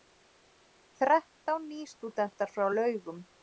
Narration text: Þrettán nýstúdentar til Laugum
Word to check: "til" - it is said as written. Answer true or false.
false